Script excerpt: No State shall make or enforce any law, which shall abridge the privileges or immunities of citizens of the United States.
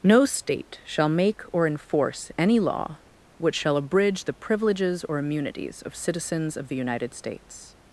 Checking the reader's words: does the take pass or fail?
pass